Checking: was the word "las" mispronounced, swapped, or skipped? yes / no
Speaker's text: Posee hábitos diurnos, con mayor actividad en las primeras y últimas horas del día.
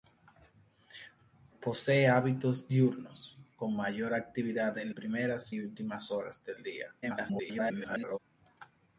yes